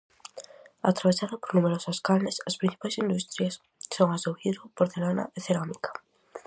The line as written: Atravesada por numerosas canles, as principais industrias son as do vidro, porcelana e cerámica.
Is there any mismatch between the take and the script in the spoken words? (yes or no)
no